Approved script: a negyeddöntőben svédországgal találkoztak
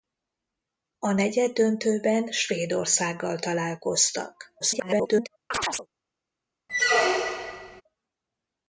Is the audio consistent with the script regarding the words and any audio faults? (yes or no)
no